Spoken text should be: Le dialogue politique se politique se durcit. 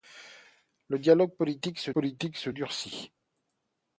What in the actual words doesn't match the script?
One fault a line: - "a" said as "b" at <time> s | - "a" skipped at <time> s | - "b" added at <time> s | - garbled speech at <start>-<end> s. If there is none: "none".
none